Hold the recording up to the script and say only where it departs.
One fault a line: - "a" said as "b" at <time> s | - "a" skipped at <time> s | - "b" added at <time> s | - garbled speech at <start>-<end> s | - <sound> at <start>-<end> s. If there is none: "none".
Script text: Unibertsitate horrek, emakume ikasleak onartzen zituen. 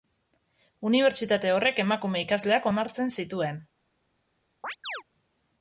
- chirp at 4.6-5.0 s